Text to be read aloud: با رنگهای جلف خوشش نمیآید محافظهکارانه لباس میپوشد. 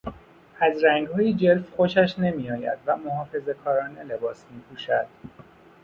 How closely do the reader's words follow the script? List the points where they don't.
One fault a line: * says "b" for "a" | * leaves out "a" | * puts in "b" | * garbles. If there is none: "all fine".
* says "از" for "با"
* puts in "و"